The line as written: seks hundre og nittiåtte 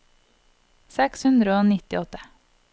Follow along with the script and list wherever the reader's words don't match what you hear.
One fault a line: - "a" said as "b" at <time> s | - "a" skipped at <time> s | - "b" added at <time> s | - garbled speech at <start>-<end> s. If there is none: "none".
none